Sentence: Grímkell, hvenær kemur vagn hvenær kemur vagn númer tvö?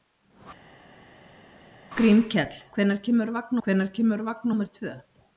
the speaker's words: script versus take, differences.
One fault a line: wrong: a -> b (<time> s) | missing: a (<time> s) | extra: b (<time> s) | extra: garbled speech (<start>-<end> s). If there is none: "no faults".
no faults